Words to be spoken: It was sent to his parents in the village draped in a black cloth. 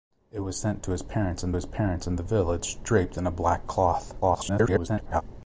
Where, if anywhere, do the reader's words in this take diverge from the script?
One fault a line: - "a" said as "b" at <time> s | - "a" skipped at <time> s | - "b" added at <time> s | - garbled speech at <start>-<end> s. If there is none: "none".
- "his parents in" added at 1.5 s
- garbled speech at 4.2-5.2 s